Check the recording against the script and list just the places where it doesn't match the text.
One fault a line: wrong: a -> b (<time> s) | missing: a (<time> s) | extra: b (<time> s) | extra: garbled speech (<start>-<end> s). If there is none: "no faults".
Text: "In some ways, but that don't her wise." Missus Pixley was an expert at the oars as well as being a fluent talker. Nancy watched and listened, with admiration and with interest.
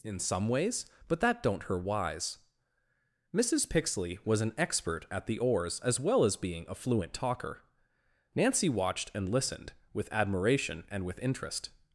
no faults